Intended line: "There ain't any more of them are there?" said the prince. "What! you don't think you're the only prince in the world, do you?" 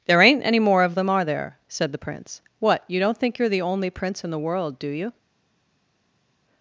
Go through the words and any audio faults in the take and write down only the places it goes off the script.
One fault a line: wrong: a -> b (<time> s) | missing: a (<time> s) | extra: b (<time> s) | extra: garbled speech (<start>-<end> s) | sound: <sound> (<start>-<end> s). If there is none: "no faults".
no faults